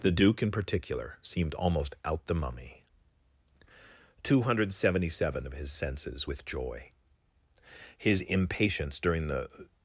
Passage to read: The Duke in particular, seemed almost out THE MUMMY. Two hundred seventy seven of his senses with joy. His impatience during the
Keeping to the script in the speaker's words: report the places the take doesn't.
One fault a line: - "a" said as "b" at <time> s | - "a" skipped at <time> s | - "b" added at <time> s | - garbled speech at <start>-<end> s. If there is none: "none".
none